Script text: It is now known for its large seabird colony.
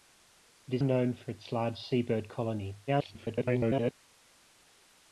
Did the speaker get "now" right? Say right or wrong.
wrong